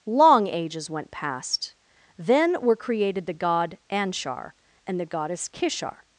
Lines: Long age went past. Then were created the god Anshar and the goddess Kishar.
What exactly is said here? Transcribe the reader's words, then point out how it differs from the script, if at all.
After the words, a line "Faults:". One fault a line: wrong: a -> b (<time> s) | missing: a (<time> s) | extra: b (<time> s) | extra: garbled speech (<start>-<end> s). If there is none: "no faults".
Long ages went past. Then were created the god Anshar and the goddess Kishar.
Faults:
wrong: age -> ages (0.5 s)